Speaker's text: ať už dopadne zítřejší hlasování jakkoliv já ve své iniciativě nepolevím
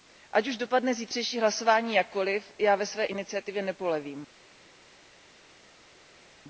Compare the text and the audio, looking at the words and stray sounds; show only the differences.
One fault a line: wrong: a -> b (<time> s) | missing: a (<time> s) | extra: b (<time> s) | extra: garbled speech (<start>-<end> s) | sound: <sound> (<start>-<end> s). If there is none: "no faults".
no faults